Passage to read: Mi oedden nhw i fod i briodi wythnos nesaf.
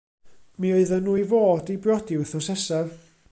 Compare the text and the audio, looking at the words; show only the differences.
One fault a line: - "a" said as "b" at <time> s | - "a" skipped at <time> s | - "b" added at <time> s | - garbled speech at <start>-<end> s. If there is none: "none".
none